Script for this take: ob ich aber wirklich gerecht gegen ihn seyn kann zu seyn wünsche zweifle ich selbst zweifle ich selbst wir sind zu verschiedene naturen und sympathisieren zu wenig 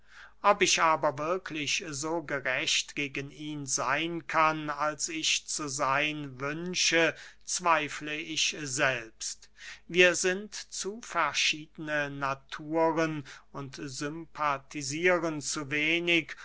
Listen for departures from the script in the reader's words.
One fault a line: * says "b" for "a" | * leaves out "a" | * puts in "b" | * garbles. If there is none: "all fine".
* puts in "so"
* puts in "als ich"
* leaves out "zweifle ich selbst"